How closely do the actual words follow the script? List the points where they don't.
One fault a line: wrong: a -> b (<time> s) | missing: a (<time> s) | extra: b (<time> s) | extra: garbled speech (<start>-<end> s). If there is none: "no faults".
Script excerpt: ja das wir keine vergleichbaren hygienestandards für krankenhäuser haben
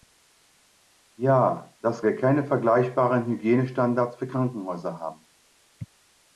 no faults